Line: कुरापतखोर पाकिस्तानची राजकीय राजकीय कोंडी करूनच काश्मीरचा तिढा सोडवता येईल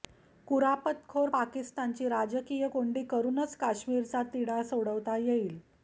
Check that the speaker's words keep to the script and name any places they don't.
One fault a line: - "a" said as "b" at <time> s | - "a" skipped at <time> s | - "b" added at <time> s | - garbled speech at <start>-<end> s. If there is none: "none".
- "राजकीय" skipped at 2.7 s